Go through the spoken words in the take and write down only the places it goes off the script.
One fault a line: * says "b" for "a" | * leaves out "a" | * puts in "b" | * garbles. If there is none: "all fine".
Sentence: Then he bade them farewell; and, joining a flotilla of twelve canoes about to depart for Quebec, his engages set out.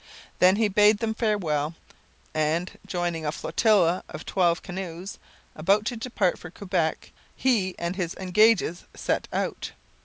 * puts in "he and"